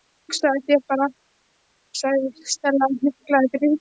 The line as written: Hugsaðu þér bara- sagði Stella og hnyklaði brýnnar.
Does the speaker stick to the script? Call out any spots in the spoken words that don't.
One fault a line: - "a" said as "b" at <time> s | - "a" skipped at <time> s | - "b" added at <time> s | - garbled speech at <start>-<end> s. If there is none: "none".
none